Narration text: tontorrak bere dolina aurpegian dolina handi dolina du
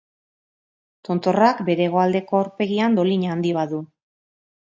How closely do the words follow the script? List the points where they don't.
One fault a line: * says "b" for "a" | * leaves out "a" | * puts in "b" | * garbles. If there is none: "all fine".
* says "hegoaldeko" for "dolina"
* says "bat" for "dolina"